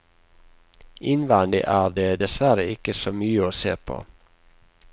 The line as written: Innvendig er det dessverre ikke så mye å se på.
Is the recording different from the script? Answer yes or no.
no